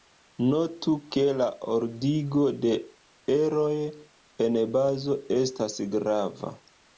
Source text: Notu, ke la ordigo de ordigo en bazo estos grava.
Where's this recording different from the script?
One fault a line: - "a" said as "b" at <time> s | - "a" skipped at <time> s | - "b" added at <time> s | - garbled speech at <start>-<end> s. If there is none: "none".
- "ordigo" said as "eroj" at 3.4 s
- "estos" said as "estas" at 5.4 s